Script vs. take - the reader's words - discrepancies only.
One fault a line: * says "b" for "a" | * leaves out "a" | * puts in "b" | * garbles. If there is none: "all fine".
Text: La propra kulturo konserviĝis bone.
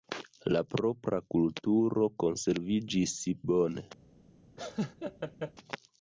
all fine